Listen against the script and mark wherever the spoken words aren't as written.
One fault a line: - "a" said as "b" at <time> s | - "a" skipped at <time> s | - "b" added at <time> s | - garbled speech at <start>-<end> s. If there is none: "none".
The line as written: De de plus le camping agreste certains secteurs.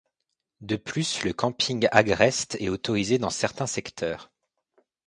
- "de" skipped at 0.8 s
- "est autorisé dans" added at 2.6 s